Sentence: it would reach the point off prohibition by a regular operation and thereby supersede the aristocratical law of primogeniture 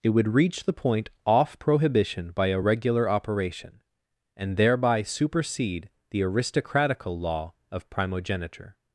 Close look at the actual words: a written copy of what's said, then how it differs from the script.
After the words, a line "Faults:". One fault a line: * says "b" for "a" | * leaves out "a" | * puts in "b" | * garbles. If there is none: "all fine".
it would reach the point off prohibition by a regular operation and thereby supersede the aristocratical law of primogeniture
Faults:
all fine